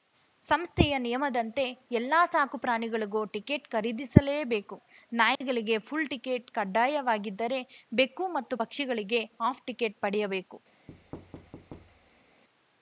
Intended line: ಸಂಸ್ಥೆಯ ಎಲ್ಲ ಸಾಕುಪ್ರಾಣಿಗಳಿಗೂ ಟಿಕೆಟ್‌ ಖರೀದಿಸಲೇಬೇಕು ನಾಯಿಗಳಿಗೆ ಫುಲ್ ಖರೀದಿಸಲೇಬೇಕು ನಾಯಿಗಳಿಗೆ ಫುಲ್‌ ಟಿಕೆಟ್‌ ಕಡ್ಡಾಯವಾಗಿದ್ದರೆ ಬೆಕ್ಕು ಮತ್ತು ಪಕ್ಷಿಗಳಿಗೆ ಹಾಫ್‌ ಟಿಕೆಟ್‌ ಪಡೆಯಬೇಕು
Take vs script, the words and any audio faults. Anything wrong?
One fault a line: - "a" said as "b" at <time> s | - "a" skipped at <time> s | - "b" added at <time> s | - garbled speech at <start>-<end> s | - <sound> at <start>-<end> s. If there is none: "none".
- "ನಿಯಮದಂತೆ" added at 1.0 s
- dropout at 5.4-5.4 s
- "ಖರೀದಿಸಲೇಬೇಕು ನಾಯಿಗಳಿಗೆ ಫುಲ್" skipped at 6.1 s
- thud at 10.9-12.4 s